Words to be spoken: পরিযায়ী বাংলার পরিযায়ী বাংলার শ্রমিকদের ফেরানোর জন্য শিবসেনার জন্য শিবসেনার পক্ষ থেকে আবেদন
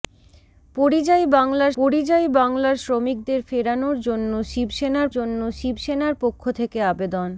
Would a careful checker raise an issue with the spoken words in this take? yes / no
no